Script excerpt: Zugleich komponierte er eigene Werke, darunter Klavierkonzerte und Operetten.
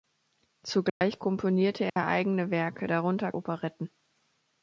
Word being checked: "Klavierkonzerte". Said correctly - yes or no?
no